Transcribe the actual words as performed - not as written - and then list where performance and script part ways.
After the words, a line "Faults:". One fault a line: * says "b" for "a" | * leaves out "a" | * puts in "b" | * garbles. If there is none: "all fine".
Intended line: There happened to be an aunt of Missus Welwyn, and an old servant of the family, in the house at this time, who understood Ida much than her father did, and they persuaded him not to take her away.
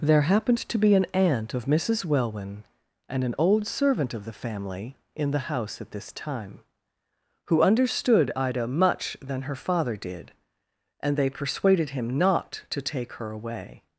There happened to be an aunt of Missus Welwyn, and an old servant of the family, in the house at this time, who understood Ida much than her father did, and they persuaded him not to take her away.
Faults:
all fine